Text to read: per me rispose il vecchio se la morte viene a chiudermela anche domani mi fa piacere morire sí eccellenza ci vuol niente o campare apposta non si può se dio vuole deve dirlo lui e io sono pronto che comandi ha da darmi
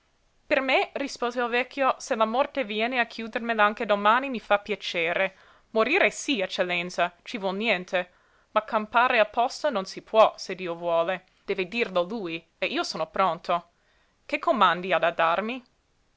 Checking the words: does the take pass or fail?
fail